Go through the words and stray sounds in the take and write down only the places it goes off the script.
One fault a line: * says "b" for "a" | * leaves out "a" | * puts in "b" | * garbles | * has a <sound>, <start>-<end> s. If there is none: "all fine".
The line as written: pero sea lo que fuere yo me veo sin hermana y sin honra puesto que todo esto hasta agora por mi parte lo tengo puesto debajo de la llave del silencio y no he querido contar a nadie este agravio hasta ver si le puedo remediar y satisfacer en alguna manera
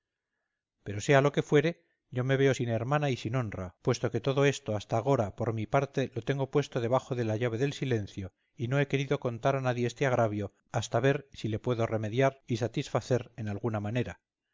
all fine